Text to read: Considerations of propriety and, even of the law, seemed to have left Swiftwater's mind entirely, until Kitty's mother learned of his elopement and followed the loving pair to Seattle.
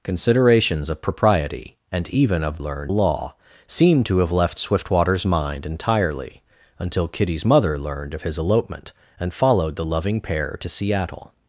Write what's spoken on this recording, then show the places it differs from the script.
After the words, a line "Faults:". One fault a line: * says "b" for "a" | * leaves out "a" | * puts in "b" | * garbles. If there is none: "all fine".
Considerations of propriety and, even of learned law, seemed to have left Swiftwater's mind entirely, until Kitty's mother learned of his elopement and followed the loving pair to Seattle.
Faults:
* says "learned" for "the"